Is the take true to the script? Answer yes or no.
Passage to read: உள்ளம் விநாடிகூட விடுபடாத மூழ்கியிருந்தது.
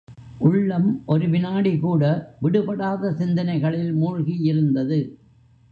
no